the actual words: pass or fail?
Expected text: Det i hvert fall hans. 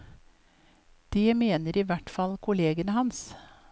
fail